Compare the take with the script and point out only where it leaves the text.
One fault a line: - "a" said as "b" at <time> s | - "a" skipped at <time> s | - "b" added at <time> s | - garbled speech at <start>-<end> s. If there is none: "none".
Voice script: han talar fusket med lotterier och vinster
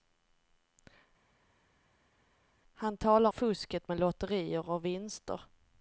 none